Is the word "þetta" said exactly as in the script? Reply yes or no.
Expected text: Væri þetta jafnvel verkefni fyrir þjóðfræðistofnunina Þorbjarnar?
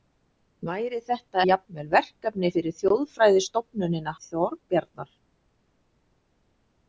yes